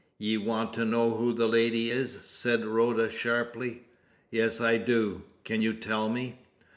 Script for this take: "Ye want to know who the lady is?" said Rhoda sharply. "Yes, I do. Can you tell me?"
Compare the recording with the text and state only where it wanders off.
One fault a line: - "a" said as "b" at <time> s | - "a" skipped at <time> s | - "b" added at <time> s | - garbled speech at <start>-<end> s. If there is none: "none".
none